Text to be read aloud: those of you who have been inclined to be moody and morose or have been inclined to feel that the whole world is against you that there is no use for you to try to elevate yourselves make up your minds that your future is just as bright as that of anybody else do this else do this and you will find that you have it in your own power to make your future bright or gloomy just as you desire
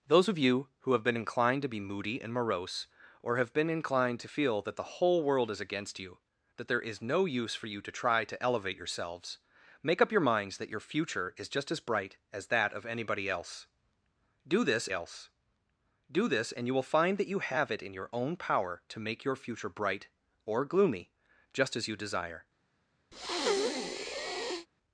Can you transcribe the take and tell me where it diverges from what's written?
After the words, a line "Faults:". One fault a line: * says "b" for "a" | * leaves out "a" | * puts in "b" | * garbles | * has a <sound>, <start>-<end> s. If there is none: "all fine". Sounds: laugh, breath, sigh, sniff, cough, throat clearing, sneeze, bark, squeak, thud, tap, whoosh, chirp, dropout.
those of you who have been inclined to be moody and morose or have been inclined to feel that the whole world is against you that there is no use for you to try to elevate yourselves make up your minds that your future is just as bright as that of anybody else do this else do this and you will find that you have it in your own power to make your future bright or gloomy just as you desire
Faults:
* has a breath, 23.1-24.7 s